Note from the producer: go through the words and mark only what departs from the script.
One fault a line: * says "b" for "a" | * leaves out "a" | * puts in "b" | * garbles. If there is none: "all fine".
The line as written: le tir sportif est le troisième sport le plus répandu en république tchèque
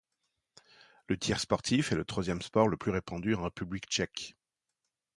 all fine